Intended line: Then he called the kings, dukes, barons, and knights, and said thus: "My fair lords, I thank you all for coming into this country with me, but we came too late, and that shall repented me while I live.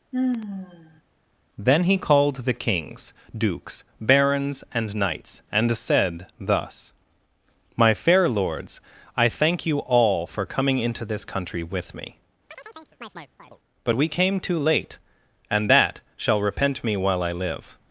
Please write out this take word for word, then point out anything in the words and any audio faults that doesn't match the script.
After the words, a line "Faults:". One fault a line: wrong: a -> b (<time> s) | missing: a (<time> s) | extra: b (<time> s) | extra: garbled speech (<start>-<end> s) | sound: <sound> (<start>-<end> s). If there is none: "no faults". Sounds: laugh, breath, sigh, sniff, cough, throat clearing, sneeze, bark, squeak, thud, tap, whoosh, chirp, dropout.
Then he called the kings, dukes, barons, and knights, and said thus: "My fair lords, I thank you all for coming into this country with me, but we came too late, and that shall repent me while I live.
Faults:
sound: sigh (0.1-1.0 s)
sound: chirp (12.5-13.6 s)
wrong: repented -> repent (16.4 s)